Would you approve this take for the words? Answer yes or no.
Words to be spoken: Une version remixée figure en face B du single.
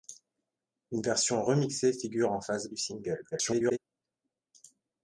no